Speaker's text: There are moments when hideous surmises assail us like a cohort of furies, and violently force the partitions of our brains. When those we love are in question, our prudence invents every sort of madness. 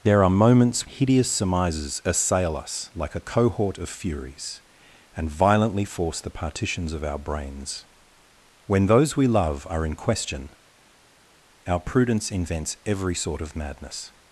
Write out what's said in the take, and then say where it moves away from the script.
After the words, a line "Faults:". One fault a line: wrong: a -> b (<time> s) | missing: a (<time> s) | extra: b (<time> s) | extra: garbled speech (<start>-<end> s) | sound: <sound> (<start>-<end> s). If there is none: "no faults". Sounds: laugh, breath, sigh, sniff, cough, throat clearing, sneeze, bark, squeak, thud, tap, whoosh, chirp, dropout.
There are moments hideous surmises assail us like a cohort of furies, and violently force the partitions of our brains. When those we love are in question, our prudence invents every sort of madness.
Faults:
missing: when (0.9 s)